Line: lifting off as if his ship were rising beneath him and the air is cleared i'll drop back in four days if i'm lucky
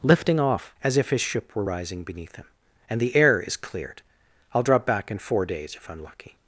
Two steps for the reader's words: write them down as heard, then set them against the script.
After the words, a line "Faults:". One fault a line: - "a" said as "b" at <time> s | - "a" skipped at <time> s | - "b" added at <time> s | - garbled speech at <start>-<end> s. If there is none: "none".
lifting off as if his ship were rising beneath him and the air is cleared i'll drop back in four days if i'm lucky
Faults:
none